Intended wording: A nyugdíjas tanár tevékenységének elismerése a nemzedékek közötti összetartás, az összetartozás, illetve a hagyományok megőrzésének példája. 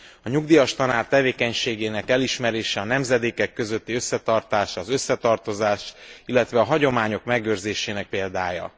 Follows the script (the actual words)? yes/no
yes